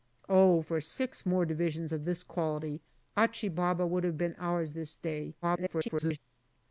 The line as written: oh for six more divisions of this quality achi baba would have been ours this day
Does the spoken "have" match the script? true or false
true